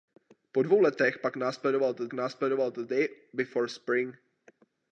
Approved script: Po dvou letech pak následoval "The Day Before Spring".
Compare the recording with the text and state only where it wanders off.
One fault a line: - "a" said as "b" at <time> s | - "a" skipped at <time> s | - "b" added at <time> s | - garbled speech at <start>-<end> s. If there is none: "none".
- "následoval The" added at 2.1 s